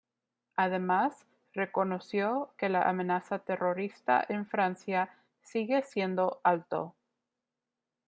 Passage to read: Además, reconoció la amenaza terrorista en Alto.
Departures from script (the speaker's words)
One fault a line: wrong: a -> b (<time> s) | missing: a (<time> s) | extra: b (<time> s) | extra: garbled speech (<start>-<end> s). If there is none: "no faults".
extra: que (2.6 s)
extra: Francia sigue siendo (4.4 s)